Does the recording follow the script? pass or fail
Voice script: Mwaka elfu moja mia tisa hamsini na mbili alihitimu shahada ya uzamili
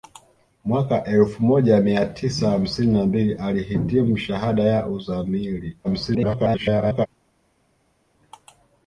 fail